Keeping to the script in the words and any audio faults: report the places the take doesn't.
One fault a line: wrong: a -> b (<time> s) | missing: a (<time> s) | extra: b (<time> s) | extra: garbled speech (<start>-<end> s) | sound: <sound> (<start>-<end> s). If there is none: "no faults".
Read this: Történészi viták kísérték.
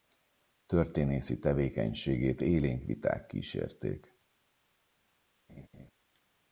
extra: tevékenységét élénk (1.4 s)
sound: laugh (5.5-5.9 s)